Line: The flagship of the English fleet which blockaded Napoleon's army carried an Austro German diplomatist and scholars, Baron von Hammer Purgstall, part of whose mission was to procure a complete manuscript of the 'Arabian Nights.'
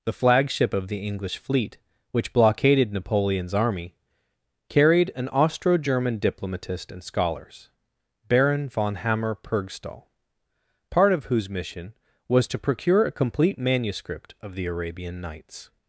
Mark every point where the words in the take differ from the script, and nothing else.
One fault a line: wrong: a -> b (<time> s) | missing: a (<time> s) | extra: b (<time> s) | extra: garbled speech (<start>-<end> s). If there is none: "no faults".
no faults